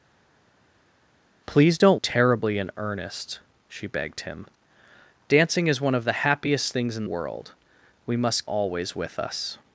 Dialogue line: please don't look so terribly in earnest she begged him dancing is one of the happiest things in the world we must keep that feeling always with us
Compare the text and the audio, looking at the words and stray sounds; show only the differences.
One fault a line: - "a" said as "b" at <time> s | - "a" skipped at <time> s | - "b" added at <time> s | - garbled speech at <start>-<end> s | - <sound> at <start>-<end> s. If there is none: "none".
- "look so" skipped at 2.0 s
- "the" skipped at 7.0 s
- "keep that feeling" skipped at 8.5 s